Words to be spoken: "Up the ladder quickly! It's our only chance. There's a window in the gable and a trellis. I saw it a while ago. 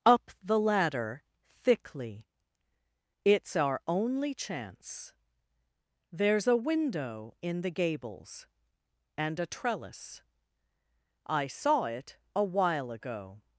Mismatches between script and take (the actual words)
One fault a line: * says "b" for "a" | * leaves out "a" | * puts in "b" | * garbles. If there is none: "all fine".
* says "thickly" for "quickly"
* says "gables" for "gable"